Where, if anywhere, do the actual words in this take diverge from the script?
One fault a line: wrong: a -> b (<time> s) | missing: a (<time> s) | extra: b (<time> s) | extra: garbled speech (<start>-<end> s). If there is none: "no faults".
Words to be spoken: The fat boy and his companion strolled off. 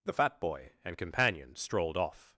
missing: his (1.0 s)